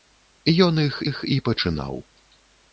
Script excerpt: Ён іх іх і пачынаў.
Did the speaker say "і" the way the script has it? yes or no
yes